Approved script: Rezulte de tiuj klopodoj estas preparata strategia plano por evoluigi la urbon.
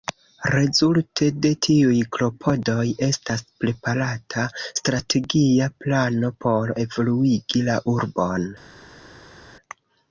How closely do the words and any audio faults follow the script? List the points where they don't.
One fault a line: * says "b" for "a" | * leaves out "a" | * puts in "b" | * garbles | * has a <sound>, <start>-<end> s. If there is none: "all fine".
all fine